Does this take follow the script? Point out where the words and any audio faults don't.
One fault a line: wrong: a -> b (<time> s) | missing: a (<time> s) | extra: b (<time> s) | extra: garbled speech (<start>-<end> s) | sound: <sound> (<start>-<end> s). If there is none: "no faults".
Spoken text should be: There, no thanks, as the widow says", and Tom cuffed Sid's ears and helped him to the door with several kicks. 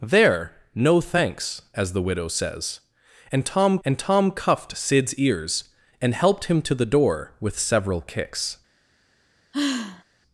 extra: and Tom (3.9 s)
sound: sigh (9.5-10.0 s)